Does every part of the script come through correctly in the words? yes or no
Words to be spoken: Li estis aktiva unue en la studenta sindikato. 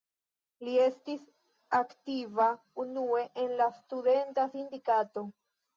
yes